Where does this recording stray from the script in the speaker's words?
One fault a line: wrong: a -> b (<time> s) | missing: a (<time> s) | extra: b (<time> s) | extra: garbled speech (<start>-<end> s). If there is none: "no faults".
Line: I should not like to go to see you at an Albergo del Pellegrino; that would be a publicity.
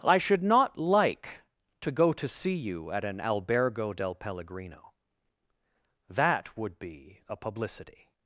no faults